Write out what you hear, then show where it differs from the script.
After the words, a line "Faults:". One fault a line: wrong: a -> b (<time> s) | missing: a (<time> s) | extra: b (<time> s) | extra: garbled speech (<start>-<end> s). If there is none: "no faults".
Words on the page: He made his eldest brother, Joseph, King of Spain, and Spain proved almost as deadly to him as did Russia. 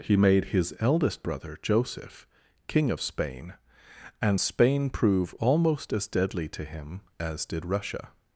He made his eldest brother, Joseph, King of Spain, and Spain prove almost as deadly to him as did Russia.
Faults:
wrong: proved -> prove (4.9 s)